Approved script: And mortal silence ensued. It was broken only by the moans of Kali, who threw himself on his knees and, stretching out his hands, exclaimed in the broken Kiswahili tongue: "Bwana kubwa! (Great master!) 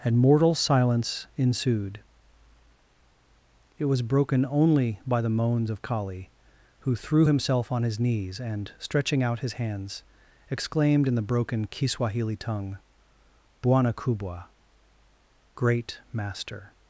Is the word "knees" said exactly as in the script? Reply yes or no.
yes